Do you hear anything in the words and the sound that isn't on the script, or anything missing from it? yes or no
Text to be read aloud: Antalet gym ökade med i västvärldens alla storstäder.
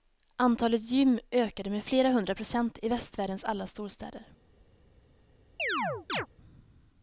yes